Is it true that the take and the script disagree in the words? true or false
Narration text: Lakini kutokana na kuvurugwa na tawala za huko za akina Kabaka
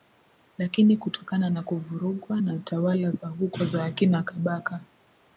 false